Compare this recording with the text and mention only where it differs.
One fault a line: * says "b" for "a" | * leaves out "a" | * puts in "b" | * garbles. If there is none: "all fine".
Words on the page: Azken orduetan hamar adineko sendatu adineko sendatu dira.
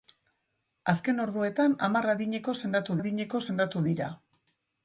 all fine